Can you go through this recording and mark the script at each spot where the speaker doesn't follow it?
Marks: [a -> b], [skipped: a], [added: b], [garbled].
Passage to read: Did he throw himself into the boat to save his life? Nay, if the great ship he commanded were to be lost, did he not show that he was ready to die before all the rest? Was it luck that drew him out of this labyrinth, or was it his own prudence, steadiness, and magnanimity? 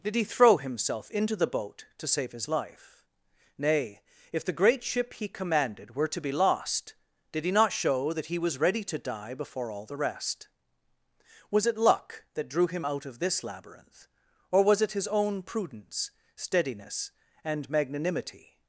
Did he throw himself into the boat to save his life? Nay, if the great ship he commanded were to be lost, did he not show that he was ready to die before all the rest? Was it luck that drew him out of this labyrinth, or was it his own prudence, steadiness, and magnanimity?